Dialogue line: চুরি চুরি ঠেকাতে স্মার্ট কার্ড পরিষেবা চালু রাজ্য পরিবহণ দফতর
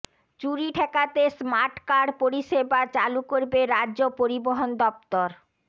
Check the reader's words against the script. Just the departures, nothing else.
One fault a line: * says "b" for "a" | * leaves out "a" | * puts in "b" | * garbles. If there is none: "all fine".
* leaves out "চুরি"
* puts in "করবে"